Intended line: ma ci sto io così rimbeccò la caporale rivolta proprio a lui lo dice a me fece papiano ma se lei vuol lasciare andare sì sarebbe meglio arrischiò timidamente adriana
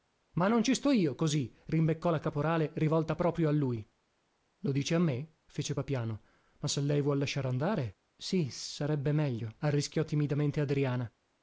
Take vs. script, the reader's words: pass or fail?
fail